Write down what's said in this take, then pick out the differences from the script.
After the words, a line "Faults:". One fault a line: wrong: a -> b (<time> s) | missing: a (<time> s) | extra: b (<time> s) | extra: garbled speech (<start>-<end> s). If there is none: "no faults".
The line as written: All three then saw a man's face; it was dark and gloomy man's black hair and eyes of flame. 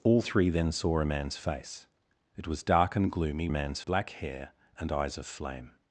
All three then saw a man's face; it was dark and gloomy man's black hair and eyes of flame.
Faults:
no faults